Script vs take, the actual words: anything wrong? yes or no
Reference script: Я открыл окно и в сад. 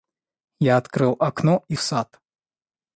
no